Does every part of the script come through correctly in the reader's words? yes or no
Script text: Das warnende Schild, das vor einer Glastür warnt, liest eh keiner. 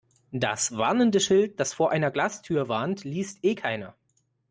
yes